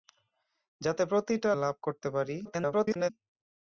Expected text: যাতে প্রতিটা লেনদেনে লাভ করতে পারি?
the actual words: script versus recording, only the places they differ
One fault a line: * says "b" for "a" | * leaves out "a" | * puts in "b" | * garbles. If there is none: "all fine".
* leaves out "লেনদেনে"
* garbles